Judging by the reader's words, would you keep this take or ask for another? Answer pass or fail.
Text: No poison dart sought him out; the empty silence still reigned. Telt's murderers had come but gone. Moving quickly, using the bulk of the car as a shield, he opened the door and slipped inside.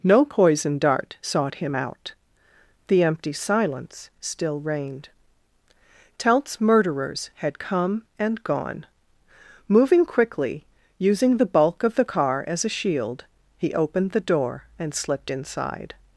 fail